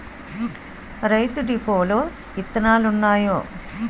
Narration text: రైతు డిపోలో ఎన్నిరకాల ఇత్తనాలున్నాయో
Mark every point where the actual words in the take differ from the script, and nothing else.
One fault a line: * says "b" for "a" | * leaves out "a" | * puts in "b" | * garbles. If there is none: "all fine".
* leaves out "ఎన్నిరకాల"